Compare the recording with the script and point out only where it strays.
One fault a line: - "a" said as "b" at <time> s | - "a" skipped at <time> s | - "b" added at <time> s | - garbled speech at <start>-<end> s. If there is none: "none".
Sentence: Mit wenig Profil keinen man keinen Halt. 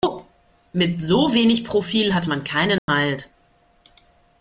- "so" added at 1.0 s
- "keinen" said as "hat" at 2.1 s